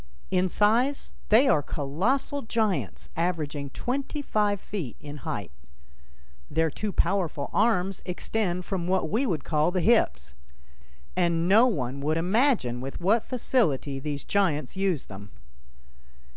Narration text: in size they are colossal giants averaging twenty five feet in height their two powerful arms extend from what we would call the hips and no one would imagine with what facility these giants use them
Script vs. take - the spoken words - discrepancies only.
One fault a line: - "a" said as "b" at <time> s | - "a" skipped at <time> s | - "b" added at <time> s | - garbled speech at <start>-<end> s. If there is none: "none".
none